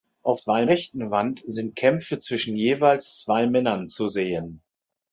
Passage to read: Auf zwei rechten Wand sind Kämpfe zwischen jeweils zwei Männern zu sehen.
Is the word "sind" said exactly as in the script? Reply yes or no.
yes